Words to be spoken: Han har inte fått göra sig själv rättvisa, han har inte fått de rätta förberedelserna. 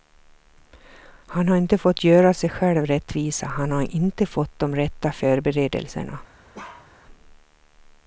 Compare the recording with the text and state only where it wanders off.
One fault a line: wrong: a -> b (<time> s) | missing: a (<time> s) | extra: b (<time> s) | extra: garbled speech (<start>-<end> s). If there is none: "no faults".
no faults